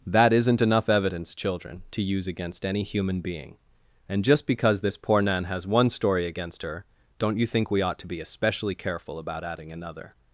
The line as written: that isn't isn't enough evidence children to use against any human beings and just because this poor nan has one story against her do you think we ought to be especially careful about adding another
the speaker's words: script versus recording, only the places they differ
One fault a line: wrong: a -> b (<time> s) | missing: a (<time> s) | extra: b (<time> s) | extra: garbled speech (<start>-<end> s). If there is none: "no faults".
missing: isn't (0.6 s)
wrong: beings -> being (3.2 s)
wrong: do -> don't (7.2 s)